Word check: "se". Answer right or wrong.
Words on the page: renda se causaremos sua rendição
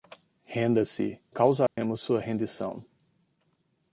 right